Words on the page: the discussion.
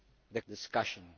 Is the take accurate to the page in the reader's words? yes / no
yes